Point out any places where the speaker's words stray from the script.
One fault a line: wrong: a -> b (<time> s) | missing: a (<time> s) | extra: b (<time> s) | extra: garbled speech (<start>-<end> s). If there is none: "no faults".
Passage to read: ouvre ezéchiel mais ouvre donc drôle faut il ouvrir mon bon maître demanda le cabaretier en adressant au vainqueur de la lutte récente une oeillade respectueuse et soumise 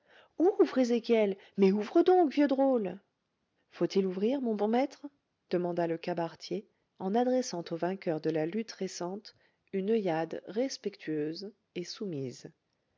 extra: vieux (2.3 s)